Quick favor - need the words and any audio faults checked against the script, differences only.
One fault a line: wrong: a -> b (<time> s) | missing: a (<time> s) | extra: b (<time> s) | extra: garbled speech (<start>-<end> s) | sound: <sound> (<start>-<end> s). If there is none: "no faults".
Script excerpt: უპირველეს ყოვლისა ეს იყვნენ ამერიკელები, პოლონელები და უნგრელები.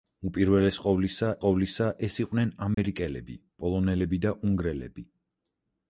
extra: ყოვლისა (1.4 s)
sound: dropout (2.7-2.8 s)